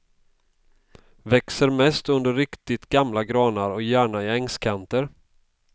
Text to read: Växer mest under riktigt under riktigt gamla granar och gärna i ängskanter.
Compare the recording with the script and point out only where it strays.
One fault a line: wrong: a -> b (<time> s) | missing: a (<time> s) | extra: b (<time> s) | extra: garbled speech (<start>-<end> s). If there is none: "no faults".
missing: under riktigt (2.9 s)